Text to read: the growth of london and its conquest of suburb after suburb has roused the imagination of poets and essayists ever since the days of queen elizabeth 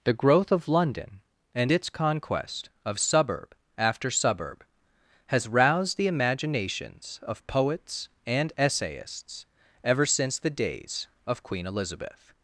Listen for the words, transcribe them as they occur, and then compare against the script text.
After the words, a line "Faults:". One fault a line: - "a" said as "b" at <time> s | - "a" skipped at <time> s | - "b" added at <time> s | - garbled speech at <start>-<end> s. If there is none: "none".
the growth of london and its conquest of suburb after suburb has roused the imaginations of poets and essayists ever since the days of queen elizabeth
Faults:
- "imagination" said as "imaginations" at 6.1 s